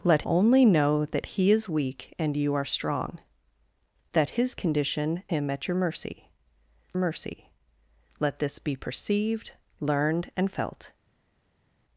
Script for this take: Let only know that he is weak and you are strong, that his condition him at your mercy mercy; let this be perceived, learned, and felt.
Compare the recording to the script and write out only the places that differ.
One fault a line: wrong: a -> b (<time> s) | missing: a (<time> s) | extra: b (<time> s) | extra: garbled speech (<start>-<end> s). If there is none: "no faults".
no faults